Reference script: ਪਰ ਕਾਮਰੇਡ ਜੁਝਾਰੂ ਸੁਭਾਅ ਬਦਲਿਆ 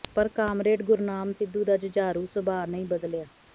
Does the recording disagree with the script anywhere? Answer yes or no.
yes